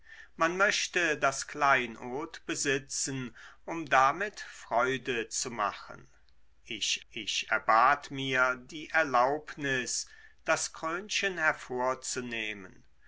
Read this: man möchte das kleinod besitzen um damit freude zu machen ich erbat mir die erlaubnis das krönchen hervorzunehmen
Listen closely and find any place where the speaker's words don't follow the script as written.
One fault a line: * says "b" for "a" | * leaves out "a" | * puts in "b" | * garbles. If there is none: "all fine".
* puts in "ich"